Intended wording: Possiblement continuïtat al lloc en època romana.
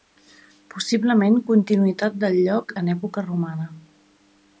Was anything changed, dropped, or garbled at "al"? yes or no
yes